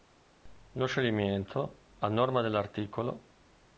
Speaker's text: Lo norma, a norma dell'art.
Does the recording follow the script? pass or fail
fail